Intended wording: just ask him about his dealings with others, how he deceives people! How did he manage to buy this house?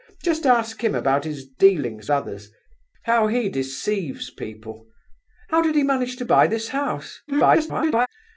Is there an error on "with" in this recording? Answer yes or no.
yes